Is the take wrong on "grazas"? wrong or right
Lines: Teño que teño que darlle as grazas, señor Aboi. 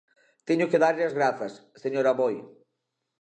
right